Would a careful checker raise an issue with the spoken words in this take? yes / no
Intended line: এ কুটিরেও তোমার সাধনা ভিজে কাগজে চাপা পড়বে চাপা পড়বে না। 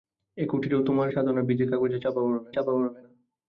no